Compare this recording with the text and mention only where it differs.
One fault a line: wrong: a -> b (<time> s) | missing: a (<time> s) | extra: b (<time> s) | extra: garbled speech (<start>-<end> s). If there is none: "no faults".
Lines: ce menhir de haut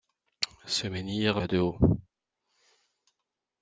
no faults